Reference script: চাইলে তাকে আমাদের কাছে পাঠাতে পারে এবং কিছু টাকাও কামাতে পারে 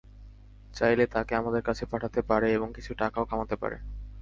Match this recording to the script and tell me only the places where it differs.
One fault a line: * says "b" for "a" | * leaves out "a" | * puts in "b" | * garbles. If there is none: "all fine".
all fine